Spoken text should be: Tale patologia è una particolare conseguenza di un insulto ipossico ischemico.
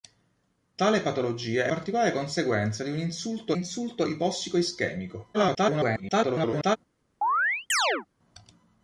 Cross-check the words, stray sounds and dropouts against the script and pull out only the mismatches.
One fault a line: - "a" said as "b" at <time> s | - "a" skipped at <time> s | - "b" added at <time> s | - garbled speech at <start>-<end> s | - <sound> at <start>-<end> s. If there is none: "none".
- "una" skipped at 1.7 s
- "insulto" added at 3.5 s
- garbled speech at 5.3-6.8 s
- chirp at 7.2-8.1 s